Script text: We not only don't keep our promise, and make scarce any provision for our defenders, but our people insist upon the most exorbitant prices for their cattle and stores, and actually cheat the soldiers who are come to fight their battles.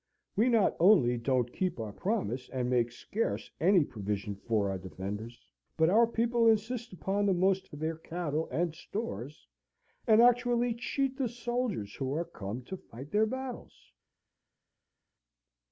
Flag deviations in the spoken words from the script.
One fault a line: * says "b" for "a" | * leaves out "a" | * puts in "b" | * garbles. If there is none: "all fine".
* leaves out "exorbitant prices"